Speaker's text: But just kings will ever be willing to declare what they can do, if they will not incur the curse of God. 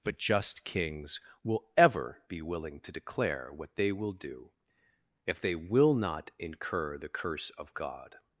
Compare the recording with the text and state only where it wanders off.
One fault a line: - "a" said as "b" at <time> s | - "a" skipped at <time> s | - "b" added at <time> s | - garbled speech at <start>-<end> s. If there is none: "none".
- "can" said as "will" at 3.9 s